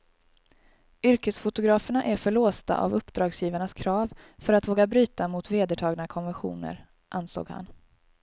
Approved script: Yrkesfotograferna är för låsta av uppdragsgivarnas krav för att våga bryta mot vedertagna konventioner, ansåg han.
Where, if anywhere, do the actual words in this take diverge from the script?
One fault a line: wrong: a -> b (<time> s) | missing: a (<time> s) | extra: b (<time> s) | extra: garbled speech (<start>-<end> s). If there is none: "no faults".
no faults